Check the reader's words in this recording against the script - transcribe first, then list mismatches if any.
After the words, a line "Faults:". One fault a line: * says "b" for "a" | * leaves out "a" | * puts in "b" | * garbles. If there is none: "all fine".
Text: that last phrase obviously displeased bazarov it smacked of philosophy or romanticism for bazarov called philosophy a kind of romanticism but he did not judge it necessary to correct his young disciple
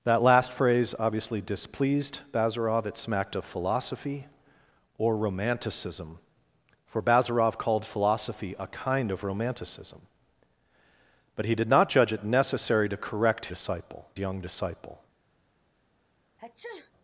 that last phrase obviously displeased bazarov it smacked of philosophy or romanticism for bazarov called philosophy a kind of romanticism but he did not judge it necessary to correct disciple young disciple
Faults:
* says "disciple" for "his"